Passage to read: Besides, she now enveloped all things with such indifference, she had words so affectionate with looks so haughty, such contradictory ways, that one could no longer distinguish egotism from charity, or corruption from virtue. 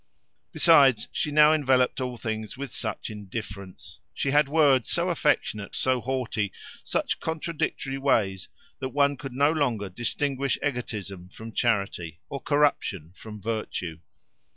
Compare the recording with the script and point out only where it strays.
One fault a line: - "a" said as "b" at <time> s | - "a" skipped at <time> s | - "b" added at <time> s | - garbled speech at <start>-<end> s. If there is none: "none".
- "with looks" skipped at 5.7 s